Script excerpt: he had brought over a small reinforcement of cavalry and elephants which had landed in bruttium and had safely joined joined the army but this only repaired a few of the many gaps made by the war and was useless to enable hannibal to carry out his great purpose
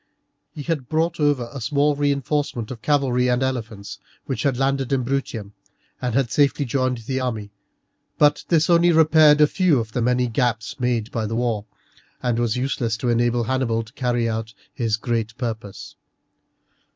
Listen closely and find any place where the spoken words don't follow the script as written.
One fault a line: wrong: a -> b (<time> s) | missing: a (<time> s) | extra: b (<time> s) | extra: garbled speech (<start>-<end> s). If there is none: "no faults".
missing: joined (7.0 s)